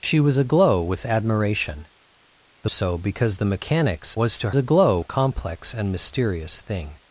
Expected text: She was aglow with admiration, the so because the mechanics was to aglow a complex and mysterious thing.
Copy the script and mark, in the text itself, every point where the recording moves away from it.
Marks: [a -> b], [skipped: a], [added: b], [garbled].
She was aglow with admiration, the so because the mechanics was to aglow a complex and mysterious thing.